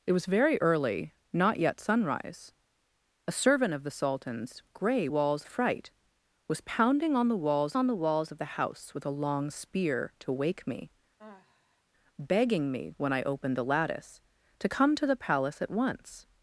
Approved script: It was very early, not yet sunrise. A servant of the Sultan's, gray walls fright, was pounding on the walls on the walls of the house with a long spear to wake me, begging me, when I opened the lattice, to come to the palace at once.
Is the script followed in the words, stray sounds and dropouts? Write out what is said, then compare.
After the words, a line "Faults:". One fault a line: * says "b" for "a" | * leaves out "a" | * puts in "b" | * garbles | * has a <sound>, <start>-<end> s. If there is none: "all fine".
It was very early, not yet sunrise. A servant of the Sultan's, gray walls fright, was pounding on the walls on the walls of the house with a long spear to wake me, begging me, when I opened the lattice, to come to the palace at once.
Faults:
* has a sigh, 11.2-11.8 s